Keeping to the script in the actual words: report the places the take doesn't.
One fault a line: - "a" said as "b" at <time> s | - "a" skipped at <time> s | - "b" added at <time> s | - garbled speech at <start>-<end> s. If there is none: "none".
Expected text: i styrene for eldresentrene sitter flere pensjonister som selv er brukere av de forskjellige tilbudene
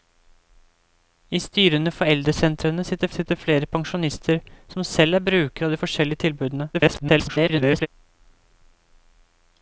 - "sitter" added at 3.2 s
- garbled speech at 6.7-7.9 s